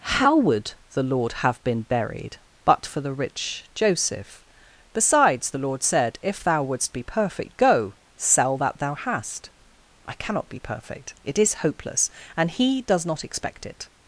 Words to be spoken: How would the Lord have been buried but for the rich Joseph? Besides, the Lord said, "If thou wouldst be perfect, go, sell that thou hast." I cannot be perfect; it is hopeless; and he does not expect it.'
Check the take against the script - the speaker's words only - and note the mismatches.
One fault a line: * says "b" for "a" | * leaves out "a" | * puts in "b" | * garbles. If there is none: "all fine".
all fine